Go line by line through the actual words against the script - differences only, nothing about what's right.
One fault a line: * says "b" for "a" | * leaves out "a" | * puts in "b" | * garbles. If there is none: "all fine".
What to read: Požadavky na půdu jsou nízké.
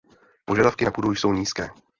all fine